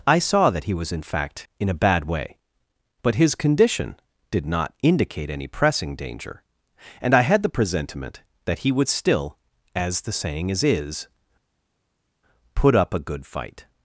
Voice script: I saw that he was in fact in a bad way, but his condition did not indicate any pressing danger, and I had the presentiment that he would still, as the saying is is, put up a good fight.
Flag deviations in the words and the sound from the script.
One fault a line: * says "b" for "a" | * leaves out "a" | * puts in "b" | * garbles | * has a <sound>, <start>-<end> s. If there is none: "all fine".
all fine